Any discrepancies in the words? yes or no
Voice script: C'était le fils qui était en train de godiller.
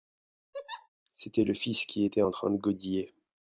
no